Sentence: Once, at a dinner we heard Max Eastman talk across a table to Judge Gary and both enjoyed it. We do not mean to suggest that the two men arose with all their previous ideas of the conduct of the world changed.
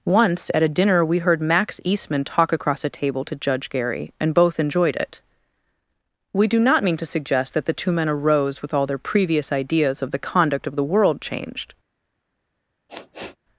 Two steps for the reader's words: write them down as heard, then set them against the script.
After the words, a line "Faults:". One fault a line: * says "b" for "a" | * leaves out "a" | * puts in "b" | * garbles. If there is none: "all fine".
Once, at a dinner we heard Max Eastman talk across a table to Judge Gary and both enjoyed it. We do not mean to suggest that the two men arose with all their previous ideas of the conduct of the world changed.
Faults:
all fine